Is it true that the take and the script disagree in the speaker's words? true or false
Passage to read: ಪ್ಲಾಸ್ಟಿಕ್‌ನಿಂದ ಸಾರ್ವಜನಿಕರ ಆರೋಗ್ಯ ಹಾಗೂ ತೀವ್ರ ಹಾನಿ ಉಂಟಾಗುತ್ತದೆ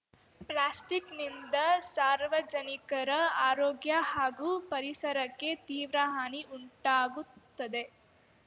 true